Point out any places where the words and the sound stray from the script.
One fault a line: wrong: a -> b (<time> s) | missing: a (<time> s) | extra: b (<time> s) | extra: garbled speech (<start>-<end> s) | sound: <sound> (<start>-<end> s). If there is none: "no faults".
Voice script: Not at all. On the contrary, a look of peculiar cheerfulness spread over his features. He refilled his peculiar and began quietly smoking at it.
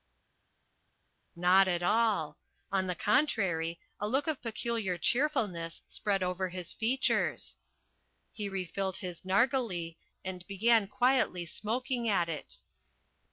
wrong: peculiar -> narghileh (9.2 s)